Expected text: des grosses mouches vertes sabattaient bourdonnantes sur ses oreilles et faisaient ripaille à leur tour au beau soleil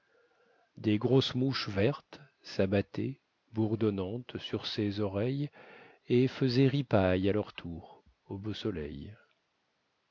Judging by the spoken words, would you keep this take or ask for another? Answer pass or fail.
pass